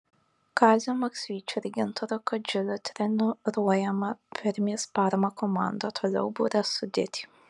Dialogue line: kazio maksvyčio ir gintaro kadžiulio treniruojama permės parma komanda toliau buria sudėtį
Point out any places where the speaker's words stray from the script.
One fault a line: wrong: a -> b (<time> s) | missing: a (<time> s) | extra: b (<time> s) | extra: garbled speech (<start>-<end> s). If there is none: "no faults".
no faults